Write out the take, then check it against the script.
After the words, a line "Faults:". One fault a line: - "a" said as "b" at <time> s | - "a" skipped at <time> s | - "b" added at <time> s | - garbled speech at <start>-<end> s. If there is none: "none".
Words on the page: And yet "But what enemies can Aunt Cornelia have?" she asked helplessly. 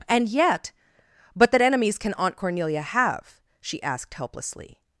And yet "But that enemies can Aunt Cornelia have?" she asked helplessly.
Faults:
- "what" said as "that" at 1.5 s